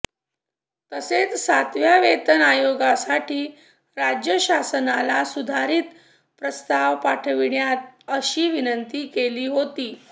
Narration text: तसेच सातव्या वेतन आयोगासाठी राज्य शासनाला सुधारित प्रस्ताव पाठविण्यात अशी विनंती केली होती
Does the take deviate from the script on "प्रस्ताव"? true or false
false